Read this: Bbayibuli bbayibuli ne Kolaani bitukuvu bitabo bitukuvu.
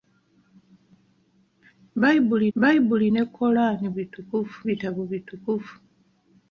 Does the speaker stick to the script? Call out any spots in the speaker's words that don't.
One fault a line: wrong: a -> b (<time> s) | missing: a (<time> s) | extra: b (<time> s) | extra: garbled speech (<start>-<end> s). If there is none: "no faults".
no faults